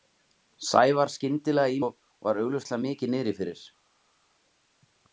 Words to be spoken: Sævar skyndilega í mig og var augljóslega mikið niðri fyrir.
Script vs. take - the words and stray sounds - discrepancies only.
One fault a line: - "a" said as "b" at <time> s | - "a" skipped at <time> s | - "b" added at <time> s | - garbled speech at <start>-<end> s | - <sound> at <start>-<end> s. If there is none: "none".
- "mig" skipped at 1.8 s